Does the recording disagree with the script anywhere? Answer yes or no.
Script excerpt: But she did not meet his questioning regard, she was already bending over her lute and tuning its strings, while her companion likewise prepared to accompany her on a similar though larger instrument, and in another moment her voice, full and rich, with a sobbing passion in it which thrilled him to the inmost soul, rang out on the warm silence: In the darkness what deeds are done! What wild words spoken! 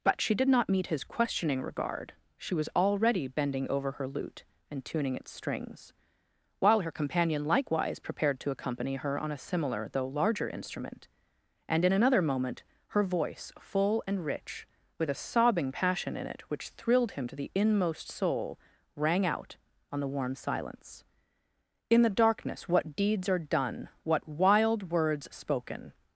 no